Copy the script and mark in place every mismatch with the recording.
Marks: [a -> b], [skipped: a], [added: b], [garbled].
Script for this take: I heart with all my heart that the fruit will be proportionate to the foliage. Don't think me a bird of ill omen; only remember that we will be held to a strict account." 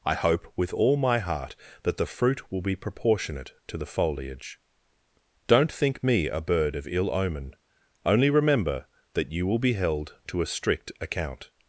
I [heart -> hope] with all my heart that the fruit will be proportionate to the foliage. Don't think me a bird of ill omen; only remember that [we -> you] will be held to a strict account."